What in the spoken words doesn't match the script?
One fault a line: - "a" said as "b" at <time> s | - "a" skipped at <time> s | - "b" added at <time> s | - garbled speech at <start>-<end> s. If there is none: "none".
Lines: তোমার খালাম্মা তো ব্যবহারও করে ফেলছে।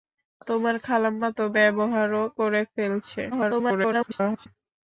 - garbled speech at 3.3-4.5 s